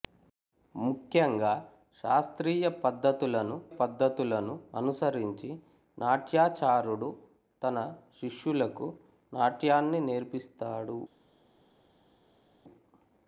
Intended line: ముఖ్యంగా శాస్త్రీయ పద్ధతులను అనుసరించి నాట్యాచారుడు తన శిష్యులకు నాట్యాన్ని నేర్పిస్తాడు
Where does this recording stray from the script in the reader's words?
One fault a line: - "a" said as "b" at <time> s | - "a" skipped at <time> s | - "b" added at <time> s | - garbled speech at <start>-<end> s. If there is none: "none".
- "పద్ధతులను" added at 3.7 s